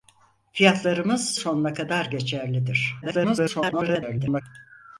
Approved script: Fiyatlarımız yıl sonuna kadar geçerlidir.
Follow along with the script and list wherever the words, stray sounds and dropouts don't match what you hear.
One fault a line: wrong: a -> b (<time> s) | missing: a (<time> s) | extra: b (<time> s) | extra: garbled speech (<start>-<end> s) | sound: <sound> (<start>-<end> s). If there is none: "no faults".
missing: yıl (1.4 s)
extra: garbled speech (3.0-4.4 s)